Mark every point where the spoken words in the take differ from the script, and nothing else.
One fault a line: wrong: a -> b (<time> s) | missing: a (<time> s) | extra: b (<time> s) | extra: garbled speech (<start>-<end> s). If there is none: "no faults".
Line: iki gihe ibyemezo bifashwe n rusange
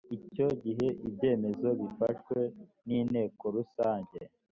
wrong: iki -> icyo (0.2 s)
extra: inteko (3.0 s)